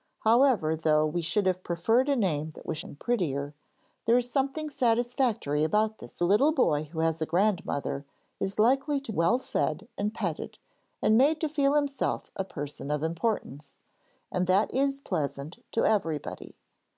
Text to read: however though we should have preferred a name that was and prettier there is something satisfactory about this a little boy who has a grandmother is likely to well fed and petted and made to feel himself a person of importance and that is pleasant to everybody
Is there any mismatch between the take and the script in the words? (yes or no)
no